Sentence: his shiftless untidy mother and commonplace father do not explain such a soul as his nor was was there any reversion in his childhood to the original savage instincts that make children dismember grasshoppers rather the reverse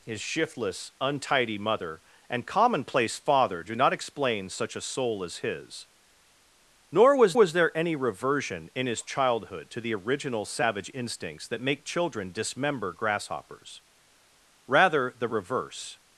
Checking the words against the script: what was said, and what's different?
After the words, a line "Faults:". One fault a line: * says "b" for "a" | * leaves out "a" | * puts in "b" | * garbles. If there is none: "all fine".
his shiftless untidy mother and commonplace father do not explain such a soul as his nor was was there any reversion in his childhood to the original savage instincts that make children dismember grasshoppers rather the reverse
Faults:
all fine